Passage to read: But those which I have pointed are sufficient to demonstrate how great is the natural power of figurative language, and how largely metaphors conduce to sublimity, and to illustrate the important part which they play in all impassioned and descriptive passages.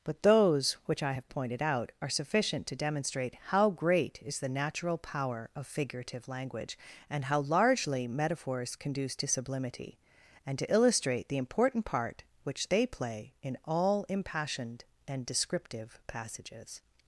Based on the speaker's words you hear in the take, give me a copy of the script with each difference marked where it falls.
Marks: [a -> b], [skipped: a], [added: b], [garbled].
But those which I have pointed [added: out] are sufficient to demonstrate how great is the natural power of figurative language, and how largely metaphors conduce to sublimity, and to illustrate the important part which they play in all impassioned and descriptive passages.